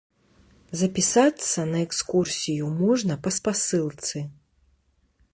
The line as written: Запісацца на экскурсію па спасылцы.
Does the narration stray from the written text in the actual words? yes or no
yes